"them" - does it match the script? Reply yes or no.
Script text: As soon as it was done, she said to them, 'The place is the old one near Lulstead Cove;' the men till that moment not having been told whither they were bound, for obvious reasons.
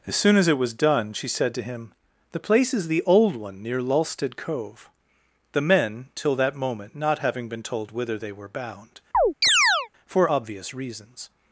no